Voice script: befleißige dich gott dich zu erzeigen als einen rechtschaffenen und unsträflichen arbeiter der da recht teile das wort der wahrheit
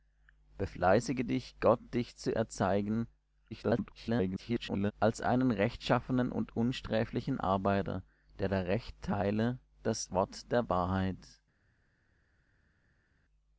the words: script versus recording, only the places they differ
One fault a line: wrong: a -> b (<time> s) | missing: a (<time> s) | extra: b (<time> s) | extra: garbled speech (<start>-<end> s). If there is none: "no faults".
extra: garbled speech (3.5-4.9 s)